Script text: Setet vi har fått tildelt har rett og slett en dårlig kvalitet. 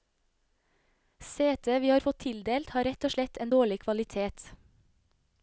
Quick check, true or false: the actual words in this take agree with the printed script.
true